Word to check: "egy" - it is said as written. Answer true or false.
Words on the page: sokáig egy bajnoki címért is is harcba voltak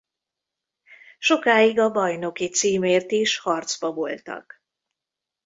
false